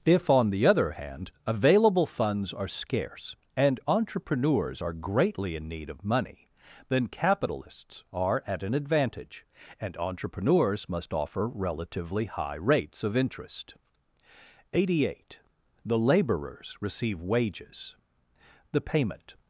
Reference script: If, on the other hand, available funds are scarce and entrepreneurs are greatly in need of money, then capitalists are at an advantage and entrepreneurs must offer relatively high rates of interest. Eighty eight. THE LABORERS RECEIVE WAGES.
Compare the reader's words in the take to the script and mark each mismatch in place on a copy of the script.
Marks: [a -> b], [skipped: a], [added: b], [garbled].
If, on the other hand, available funds are scarce and entrepreneurs are greatly in need of money, then capitalists are at an advantage and entrepreneurs must offer relatively high rates of interest. Eighty eight. THE LABORERS RECEIVE WAGES. [added: The payment]